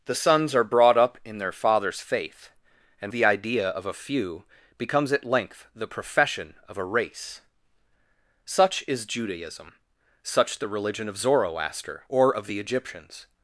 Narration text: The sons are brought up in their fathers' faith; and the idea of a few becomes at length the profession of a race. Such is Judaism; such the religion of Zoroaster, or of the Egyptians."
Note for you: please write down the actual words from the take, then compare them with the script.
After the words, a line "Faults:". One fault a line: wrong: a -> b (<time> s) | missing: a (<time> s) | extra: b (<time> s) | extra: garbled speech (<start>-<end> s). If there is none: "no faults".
The sons are brought up in their fathers' faith; and the idea of a few becomes at length the profession of a race. Such is Judaism; such the religion of Zoroaster, or of the Egyptians."
Faults:
no faults